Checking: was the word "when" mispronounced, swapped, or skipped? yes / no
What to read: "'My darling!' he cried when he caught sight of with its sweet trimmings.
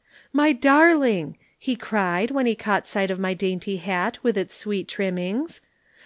no